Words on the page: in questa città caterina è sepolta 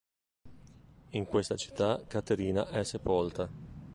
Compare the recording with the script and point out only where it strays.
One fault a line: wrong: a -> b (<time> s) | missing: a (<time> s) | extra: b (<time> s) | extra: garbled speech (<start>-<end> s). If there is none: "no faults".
no faults